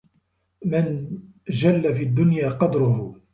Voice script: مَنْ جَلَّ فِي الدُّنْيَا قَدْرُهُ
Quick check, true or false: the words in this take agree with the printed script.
true